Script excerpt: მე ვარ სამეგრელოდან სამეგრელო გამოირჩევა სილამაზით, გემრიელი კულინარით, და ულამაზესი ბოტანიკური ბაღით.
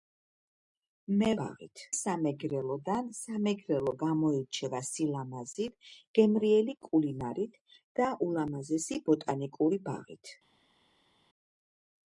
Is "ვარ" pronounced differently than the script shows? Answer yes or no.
yes